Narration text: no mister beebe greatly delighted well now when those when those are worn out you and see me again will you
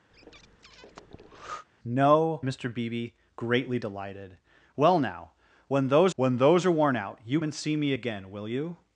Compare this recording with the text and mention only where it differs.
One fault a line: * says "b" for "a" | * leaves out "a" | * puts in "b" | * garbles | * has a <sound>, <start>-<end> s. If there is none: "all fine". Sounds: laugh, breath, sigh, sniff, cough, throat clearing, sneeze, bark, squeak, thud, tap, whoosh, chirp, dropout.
* has a breath, 0.1-1.6 s